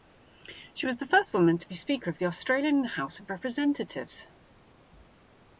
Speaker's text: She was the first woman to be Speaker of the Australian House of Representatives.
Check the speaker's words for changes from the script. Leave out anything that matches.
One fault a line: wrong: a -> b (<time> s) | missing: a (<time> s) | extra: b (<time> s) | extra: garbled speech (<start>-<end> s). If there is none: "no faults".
no faults